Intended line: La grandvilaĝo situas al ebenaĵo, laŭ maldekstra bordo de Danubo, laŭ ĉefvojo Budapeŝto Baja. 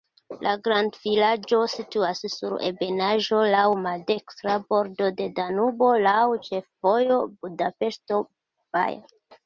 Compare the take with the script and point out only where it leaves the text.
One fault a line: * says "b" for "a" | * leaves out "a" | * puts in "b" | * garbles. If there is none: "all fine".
* says "sur" for "al"